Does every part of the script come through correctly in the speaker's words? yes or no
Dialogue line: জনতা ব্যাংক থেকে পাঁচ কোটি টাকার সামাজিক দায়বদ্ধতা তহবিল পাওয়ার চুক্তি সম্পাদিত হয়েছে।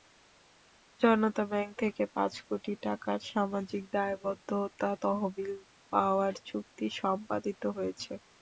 yes